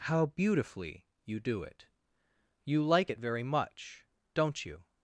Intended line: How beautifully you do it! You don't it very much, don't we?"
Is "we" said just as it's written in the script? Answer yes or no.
no